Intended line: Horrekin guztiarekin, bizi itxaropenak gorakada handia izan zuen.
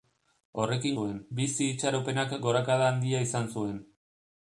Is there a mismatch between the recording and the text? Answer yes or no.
yes